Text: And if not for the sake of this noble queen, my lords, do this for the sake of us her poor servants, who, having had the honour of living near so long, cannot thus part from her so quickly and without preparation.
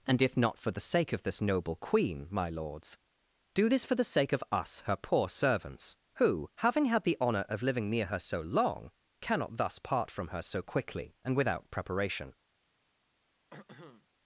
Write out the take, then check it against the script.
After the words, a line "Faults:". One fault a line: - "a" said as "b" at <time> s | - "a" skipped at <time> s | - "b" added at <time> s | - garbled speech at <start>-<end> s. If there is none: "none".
And if not for the sake of this noble queen, my lords, do this for the sake of us her poor servants, who, having had the honour of living near her so long, cannot thus part from her so quickly and without preparation.
Faults:
- "her" added at 8.1 s